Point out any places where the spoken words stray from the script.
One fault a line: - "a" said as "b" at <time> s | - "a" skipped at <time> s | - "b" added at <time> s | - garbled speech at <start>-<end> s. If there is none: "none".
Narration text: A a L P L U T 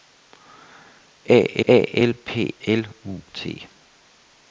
none